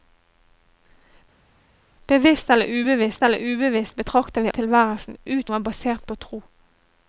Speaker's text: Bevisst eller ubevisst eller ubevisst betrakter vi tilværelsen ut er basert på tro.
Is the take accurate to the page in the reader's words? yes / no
yes